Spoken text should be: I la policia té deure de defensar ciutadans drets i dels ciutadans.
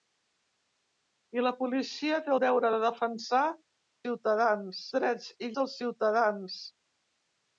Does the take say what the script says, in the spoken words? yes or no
yes